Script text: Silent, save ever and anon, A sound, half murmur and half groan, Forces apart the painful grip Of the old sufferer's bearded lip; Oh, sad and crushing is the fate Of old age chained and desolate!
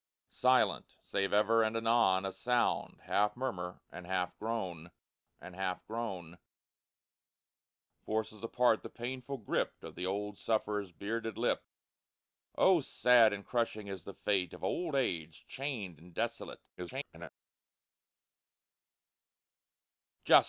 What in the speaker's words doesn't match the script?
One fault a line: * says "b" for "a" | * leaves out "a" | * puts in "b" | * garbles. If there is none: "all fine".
* puts in "and half groan"
* garbles